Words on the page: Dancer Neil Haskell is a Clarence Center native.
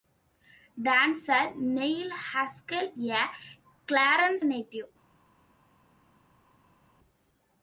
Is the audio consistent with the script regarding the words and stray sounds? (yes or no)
no